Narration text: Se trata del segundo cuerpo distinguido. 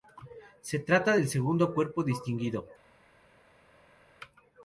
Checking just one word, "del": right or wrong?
right